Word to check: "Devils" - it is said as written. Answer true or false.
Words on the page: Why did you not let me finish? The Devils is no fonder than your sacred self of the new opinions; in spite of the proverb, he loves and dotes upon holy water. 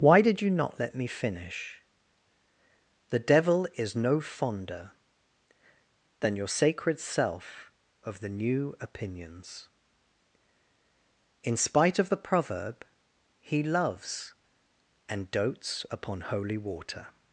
false